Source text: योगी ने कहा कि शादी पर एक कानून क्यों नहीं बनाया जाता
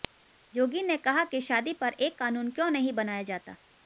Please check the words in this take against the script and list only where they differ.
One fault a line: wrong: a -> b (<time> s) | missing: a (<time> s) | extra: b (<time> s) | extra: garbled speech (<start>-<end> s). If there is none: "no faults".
no faults